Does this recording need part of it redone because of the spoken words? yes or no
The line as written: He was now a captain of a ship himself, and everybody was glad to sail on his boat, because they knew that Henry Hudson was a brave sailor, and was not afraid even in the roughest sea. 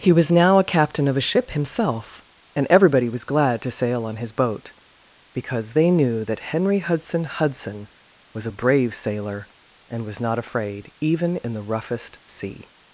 yes